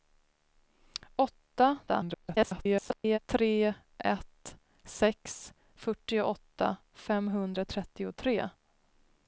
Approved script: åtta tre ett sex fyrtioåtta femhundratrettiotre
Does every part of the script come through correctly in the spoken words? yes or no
no